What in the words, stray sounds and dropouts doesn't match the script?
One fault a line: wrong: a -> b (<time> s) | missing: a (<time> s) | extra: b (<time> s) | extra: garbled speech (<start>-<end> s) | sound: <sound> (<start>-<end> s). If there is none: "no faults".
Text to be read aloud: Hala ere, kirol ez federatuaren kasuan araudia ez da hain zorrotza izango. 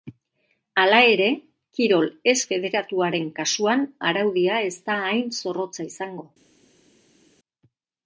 no faults